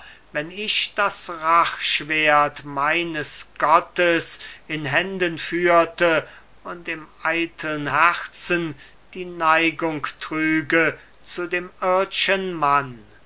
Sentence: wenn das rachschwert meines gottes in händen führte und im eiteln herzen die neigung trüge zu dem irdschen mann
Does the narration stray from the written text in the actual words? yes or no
yes